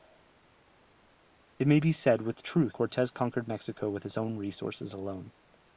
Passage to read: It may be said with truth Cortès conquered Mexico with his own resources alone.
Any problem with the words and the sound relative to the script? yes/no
no